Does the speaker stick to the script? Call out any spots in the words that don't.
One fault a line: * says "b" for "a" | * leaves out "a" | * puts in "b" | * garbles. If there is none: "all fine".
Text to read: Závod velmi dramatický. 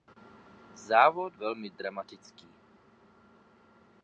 all fine